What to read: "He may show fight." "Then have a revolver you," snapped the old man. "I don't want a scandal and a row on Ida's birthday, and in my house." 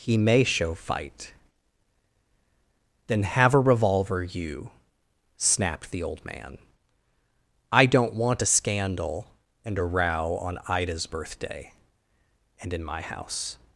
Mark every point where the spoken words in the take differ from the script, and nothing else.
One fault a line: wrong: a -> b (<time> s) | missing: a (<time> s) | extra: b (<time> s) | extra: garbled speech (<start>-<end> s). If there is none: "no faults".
no faults